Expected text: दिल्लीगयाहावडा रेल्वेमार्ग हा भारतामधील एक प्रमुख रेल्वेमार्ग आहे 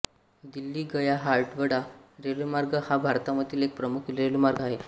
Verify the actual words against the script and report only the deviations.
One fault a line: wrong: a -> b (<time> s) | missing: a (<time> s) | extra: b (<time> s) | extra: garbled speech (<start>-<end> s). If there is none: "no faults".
no faults